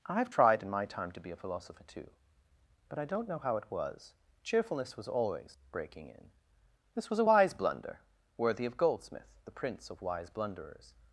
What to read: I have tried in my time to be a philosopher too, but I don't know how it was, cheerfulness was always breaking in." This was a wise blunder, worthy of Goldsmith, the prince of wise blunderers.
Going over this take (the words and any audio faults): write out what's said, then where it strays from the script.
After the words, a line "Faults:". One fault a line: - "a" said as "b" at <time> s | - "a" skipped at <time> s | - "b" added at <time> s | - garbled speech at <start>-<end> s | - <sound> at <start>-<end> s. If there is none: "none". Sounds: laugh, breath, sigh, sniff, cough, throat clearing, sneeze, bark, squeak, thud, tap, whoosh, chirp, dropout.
I have tried in my time to be a philosopher too, but I don't know how it was, cheerfulness was always breaking in." This was a wise blunder, worthy of Goldsmith, the prince of wise blunderers.
Faults:
none